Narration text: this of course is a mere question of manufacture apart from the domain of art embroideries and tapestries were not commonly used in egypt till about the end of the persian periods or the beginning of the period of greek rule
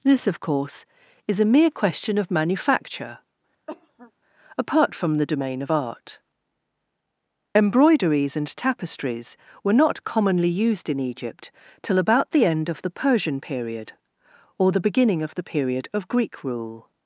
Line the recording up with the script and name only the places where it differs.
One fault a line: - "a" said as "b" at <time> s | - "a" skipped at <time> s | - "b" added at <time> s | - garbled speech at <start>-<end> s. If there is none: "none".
- "periods" said as "period" at 13.4 s